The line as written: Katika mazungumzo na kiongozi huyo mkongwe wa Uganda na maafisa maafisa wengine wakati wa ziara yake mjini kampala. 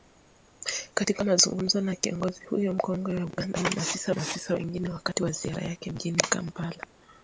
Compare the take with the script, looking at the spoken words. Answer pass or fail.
pass